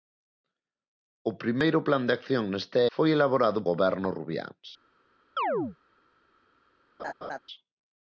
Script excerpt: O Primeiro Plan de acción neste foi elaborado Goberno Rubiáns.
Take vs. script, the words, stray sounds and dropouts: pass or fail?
fail